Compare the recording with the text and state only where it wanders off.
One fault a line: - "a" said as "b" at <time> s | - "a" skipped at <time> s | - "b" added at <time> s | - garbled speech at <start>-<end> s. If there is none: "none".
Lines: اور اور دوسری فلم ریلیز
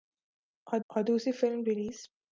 none